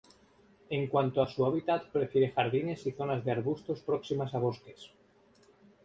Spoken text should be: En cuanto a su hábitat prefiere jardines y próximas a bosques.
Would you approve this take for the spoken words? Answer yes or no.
no